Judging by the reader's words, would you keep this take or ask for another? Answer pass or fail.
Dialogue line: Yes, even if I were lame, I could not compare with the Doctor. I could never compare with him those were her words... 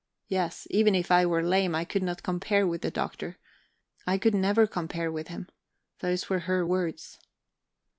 pass